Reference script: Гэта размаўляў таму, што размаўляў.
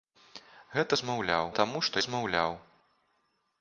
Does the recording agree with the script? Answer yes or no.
yes